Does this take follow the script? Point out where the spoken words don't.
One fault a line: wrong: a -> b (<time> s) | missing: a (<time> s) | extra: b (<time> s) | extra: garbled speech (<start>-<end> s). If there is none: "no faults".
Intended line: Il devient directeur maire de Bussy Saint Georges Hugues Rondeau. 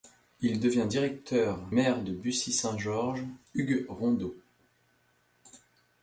no faults